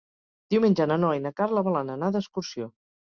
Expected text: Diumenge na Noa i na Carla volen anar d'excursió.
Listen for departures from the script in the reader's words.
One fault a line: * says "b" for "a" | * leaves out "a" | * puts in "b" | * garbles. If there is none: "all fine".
all fine